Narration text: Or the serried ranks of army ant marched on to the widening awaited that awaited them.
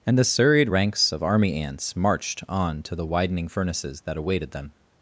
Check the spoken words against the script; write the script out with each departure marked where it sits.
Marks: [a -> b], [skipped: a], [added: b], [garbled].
[Or -> And] the serried ranks of army [ant -> ants] marched on to the widening [awaited -> furnaces] that awaited them.